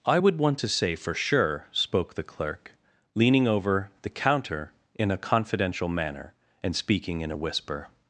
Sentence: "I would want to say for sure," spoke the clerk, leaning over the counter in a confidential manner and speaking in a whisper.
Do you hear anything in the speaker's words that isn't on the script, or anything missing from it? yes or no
no